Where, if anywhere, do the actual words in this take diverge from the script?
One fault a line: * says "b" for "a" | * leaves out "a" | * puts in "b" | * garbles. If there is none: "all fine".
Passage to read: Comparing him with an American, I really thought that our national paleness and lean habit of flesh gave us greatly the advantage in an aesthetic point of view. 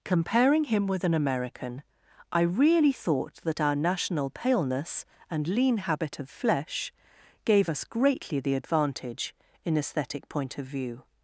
* leaves out "an"